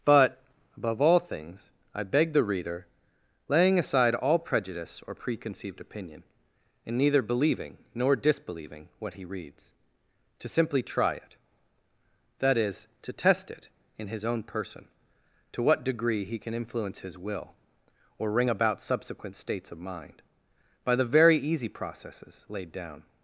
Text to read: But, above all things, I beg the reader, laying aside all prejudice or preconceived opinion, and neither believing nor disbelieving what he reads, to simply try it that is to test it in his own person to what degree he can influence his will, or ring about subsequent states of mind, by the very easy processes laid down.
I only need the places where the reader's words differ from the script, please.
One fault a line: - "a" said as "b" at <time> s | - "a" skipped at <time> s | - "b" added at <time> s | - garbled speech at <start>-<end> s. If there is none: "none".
none